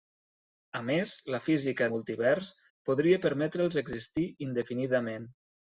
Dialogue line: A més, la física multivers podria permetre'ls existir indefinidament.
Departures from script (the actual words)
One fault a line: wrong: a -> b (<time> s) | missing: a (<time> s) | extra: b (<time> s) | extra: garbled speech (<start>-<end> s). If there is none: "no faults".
no faults